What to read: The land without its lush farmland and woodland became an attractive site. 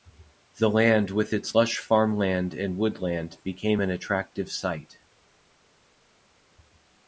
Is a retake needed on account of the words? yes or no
yes